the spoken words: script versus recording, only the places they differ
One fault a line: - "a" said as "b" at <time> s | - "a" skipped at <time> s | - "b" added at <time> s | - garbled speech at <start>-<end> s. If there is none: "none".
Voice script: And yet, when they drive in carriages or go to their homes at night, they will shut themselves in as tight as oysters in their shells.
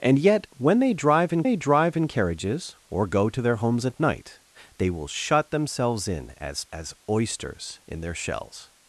- "they drive in" added at 1.4 s
- "tight" skipped at 6.6 s